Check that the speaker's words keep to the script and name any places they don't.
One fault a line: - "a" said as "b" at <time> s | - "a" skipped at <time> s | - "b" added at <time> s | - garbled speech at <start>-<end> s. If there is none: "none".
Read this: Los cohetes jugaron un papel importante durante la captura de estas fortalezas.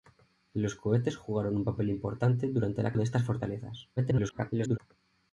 - "captura" skipped at 2.9 s
- garbled speech at 4.0-4.8 s